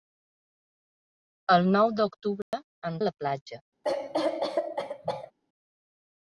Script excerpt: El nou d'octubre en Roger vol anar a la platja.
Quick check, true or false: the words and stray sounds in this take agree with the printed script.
false